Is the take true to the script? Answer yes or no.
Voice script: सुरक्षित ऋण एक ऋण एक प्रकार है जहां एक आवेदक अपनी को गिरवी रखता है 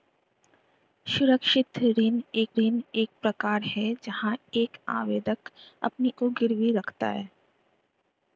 yes